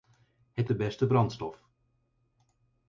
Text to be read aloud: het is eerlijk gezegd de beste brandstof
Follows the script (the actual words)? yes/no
no